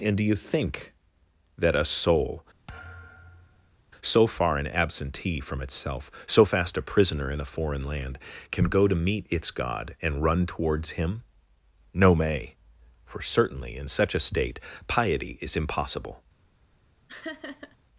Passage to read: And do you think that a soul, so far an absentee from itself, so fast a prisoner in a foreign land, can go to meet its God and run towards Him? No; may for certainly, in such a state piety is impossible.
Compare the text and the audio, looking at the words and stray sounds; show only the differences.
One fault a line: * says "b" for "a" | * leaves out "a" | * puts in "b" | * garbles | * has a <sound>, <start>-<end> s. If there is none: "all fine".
* has a thud, 2.7-3.8 s
* has a laugh, 17.1-17.8 s